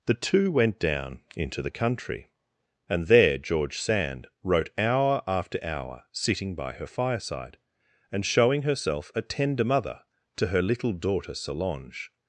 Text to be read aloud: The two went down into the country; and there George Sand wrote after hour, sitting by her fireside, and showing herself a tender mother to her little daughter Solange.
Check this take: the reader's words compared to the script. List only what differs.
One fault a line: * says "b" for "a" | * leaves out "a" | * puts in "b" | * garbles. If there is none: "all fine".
* puts in "hour"